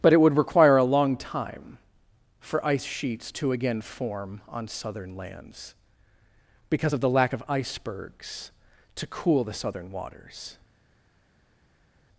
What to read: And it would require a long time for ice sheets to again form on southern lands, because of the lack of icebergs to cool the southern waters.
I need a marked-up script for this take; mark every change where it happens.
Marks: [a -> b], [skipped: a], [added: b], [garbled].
[And -> But] it would require a long time for ice sheets to again form on southern lands, because of the lack of icebergs to cool the southern waters.